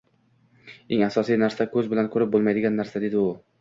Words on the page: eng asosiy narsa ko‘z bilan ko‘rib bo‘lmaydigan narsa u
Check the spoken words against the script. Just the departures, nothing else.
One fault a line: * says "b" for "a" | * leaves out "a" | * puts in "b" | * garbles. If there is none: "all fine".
* puts in "dedi"